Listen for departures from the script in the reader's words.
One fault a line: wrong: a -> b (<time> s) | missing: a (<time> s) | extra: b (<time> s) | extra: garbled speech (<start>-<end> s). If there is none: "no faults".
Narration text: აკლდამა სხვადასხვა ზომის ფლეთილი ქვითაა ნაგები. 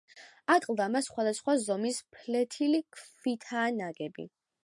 no faults